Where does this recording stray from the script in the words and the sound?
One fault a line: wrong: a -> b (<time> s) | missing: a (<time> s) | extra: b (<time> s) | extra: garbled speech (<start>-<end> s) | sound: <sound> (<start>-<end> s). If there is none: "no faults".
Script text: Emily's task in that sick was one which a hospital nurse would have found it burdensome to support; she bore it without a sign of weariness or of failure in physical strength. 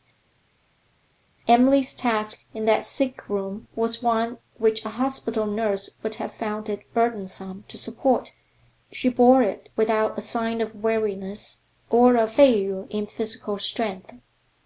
extra: room (3.3 s)